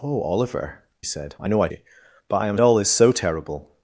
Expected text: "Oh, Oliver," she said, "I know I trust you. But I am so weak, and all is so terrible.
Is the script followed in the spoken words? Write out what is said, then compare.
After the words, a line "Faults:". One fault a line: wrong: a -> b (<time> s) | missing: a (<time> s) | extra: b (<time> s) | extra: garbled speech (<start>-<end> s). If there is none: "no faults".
"Oh, Oliver," said, "I know I you. But I am all is so terrible.
Faults:
missing: she (0.8 s)
missing: trust (1.7 s)
missing: so weak and (2.6 s)